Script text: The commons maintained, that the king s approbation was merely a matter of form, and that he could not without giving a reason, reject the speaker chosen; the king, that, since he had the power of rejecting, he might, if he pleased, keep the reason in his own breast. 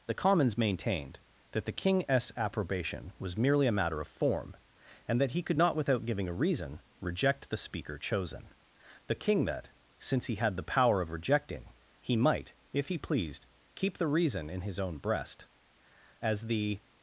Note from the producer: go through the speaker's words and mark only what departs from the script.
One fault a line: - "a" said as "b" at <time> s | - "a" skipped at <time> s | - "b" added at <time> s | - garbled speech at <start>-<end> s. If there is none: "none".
- "As the" added at 16.2 s